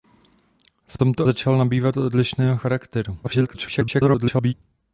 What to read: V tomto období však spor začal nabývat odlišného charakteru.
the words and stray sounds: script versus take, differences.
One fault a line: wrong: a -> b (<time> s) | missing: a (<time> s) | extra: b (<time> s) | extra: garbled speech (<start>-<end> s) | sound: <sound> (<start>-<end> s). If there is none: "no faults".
missing: období však spor (1.3 s)
extra: garbled speech (3.2-4.5 s)